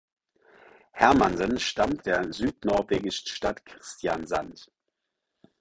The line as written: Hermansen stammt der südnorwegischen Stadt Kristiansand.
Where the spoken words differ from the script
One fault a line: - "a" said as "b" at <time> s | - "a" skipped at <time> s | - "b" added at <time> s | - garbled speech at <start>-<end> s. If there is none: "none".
none